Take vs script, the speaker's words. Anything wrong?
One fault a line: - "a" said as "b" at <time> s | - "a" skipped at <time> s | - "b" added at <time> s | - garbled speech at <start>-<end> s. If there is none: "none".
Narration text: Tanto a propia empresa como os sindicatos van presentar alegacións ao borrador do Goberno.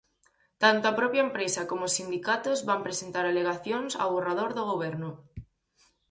none